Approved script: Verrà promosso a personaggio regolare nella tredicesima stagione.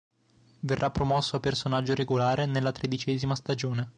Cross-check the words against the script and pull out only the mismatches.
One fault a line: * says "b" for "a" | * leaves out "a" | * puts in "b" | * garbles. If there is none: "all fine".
all fine